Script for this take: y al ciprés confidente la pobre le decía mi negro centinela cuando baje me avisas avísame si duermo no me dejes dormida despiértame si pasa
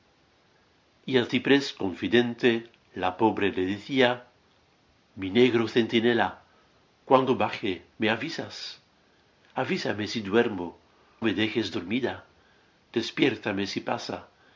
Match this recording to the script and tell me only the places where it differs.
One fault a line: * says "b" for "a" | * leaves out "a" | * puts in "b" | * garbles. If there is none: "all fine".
* leaves out "no"